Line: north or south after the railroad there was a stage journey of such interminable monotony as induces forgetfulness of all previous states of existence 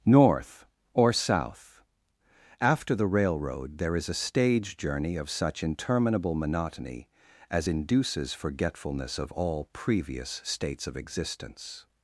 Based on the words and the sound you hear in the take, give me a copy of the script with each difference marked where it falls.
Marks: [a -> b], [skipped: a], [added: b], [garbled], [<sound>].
north or south after the railroad there [was -> is] a stage journey of such interminable monotony as induces forgetfulness of all previous states of existence